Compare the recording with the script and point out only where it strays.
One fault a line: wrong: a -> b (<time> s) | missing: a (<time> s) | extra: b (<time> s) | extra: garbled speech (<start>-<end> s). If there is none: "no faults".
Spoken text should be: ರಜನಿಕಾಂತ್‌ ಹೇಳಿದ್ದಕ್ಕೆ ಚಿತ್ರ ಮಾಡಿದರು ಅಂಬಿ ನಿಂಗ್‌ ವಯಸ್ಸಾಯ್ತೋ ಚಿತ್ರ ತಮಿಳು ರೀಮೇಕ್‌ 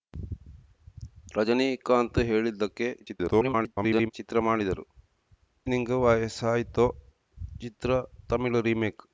extra: garbled speech (3.0-4.1 s)
missing: ಅಂಬಿ (4.8 s)